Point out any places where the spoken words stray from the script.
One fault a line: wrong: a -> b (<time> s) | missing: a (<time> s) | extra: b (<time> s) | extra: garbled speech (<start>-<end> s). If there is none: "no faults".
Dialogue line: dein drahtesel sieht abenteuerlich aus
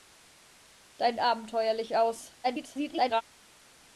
missing: drahtesel sieht (1.2 s)
extra: garbled speech (2.4-3.2 s)